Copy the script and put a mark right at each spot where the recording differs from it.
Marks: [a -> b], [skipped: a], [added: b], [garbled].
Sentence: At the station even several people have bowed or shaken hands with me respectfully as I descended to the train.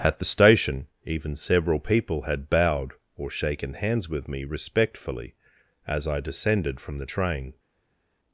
At the station even several people [have -> had] bowed or shaken hands with me respectfully as I descended [to -> from] the train.